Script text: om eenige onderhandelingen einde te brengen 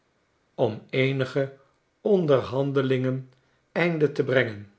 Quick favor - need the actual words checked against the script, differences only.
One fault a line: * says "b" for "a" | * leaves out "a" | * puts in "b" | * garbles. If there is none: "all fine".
all fine